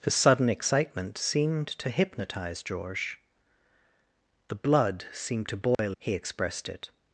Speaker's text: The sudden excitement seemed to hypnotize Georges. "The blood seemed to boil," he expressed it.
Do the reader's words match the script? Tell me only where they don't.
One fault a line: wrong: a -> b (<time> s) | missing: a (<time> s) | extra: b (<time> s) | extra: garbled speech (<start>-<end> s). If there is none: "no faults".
no faults